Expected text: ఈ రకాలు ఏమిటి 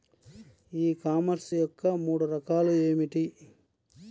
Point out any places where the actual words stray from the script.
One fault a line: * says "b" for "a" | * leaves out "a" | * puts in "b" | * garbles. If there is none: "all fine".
* puts in "కామర్స్ యొక్క మూడు"